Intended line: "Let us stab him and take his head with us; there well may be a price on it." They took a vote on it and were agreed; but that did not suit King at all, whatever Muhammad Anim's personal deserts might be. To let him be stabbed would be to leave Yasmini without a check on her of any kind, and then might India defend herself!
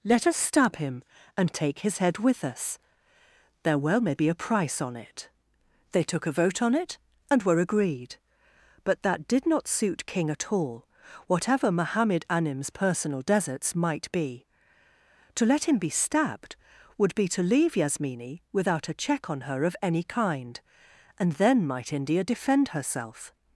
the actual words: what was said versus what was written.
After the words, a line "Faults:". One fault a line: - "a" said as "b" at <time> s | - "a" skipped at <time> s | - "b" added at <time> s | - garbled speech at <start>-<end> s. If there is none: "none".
"Let us stab him and take his head with us; there well may be a price on it." They took a vote on it and were agreed; but that did not suit King at all, whatever Muhammad Anim's personal deserts might be. To let him be stabbed would be to leave Yasmini without a check on her of any kind, and then might India defend herself!
Faults:
none